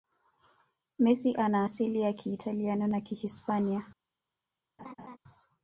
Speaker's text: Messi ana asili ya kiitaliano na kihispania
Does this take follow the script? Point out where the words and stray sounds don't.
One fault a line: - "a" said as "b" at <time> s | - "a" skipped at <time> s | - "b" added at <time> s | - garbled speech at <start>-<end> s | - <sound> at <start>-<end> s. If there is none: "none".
- laugh at 4.8-5.2 s